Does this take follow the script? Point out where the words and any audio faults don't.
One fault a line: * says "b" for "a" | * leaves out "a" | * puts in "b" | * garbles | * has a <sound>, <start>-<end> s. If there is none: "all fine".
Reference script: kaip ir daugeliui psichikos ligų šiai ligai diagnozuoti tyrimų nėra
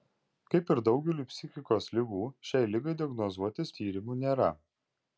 all fine